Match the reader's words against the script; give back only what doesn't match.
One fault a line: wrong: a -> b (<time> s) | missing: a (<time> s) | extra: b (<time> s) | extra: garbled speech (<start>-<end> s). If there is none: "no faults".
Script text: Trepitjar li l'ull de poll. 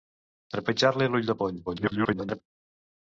extra: garbled speech (1.7-2.4 s)